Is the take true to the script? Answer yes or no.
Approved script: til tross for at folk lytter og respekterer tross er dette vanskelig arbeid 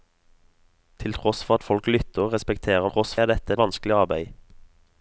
yes